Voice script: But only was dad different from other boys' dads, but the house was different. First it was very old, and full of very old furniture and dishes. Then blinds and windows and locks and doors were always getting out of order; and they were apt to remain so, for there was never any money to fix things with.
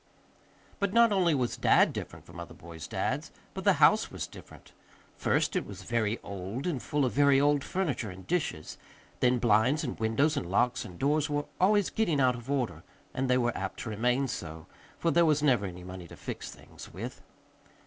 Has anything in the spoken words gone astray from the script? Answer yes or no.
yes